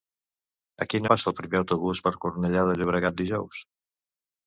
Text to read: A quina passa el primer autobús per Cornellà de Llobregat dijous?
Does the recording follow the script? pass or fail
pass